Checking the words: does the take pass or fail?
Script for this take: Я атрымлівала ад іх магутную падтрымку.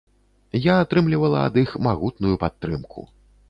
pass